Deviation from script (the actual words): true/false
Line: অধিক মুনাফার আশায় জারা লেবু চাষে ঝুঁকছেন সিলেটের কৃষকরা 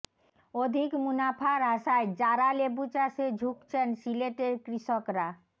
false